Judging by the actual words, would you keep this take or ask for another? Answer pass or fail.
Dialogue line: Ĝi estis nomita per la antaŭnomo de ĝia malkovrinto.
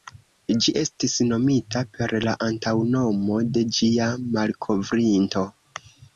pass